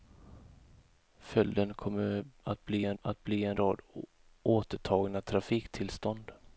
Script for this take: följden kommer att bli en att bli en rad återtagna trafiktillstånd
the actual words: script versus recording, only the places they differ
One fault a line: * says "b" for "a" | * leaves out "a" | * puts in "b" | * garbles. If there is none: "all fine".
all fine